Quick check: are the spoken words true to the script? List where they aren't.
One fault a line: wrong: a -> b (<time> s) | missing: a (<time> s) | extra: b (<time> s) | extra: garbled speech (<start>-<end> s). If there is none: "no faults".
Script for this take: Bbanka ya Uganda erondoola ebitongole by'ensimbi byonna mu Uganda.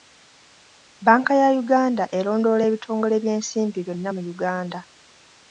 no faults